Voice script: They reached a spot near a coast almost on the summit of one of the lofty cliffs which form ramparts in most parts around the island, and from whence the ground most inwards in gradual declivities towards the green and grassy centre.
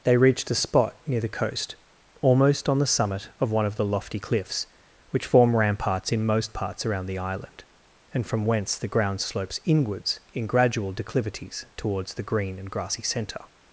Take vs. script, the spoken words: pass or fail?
fail